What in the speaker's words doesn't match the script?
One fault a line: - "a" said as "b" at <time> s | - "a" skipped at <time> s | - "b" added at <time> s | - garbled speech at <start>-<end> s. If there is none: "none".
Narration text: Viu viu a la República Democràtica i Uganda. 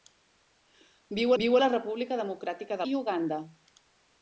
none